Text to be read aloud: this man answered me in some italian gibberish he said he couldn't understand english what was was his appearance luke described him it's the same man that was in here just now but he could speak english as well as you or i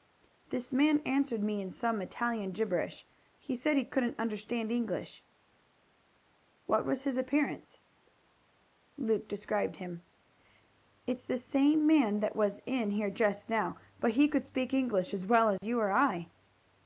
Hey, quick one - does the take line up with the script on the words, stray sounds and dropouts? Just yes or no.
no